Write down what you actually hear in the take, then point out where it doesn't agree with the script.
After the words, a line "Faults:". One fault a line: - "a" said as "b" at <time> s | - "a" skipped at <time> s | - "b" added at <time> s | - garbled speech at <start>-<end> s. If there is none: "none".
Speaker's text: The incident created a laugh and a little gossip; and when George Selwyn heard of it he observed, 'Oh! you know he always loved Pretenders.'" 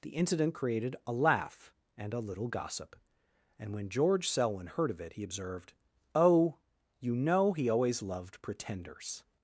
The incident created a laugh and a little gossip; and when George Selwyn heard of it he observed, 'Oh! you know he always loved Pretenders.'"
Faults:
none